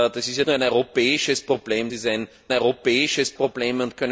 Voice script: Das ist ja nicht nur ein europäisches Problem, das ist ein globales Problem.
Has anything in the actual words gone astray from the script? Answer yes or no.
yes